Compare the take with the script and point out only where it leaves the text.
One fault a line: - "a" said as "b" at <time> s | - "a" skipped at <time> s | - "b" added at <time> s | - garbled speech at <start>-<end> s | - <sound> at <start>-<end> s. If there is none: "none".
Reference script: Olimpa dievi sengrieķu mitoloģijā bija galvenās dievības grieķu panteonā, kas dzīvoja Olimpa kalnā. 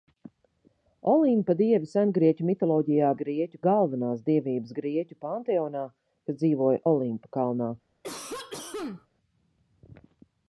- "bija" said as "grieķu" at 3.2 s
- cough at 8.0-9.1 s